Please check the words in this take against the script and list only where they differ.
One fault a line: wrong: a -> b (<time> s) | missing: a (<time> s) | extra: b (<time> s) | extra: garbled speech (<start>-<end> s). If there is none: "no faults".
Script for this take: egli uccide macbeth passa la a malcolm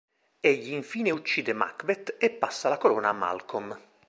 extra: infine (0.7 s)
extra: e (2.2 s)
extra: corona (2.8 s)